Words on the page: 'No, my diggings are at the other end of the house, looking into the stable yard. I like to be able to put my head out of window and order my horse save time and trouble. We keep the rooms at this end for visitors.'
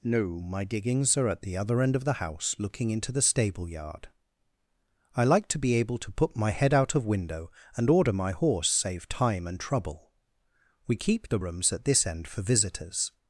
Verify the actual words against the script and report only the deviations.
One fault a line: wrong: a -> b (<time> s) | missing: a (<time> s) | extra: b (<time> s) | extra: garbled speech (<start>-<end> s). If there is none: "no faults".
no faults